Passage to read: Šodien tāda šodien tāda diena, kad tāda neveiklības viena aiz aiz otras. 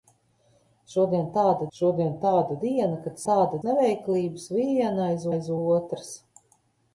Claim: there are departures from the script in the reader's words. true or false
false